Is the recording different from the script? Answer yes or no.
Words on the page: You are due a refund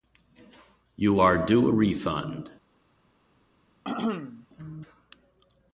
no